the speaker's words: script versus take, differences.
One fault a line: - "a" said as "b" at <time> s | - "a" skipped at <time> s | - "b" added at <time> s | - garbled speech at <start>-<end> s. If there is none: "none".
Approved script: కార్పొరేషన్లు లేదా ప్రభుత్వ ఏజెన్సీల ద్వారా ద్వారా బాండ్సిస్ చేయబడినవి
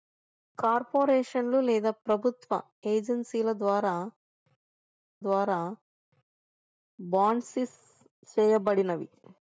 none